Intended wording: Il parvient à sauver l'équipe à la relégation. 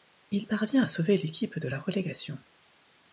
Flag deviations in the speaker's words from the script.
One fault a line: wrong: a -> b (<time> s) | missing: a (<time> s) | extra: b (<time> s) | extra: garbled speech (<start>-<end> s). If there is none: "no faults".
wrong: à -> de (1.6 s)